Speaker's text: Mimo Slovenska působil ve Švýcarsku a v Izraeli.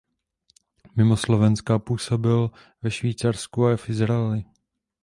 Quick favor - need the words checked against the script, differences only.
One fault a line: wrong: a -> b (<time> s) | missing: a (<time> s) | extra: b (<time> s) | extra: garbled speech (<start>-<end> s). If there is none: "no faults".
no faults